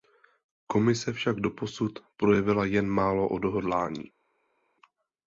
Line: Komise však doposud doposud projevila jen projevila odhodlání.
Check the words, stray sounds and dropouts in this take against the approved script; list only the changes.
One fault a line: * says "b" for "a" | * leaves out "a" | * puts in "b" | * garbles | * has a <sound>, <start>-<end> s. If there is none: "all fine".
* leaves out "doposud"
* says "málo" for "projevila"